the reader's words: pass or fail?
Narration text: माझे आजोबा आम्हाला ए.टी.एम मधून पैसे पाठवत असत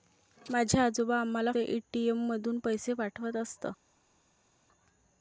pass